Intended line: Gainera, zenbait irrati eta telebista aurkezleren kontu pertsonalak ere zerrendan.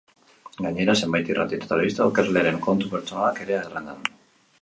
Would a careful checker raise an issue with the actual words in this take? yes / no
no